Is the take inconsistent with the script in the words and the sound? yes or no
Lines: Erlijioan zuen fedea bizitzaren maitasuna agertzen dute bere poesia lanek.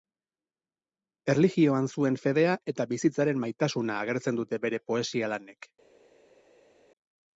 yes